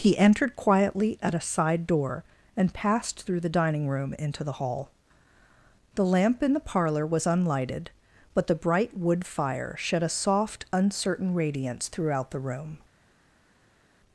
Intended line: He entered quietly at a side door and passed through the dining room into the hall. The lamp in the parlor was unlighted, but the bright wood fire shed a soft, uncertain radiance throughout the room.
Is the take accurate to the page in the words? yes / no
yes